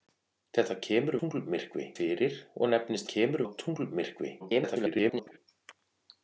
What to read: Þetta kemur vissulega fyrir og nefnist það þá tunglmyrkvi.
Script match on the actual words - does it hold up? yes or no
no